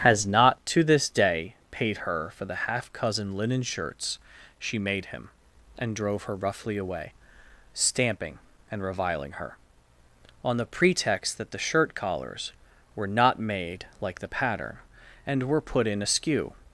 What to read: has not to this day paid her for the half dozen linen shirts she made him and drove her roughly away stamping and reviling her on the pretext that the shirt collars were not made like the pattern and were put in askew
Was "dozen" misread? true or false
true